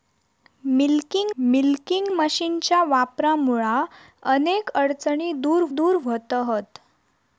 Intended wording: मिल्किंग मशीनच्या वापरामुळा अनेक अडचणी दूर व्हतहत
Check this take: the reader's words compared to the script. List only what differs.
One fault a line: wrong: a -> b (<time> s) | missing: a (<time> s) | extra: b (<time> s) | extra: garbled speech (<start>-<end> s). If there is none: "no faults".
extra: मिल्किंग (1.4 s)
extra: दूर (5.7 s)